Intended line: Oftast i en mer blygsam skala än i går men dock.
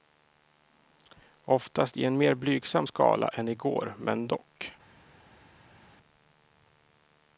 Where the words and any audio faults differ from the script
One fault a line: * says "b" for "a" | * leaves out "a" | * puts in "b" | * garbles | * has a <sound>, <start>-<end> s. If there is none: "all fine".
all fine